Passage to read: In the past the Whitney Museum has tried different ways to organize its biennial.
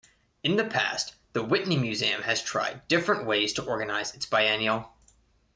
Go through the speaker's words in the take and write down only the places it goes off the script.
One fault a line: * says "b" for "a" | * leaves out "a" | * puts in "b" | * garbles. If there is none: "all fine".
all fine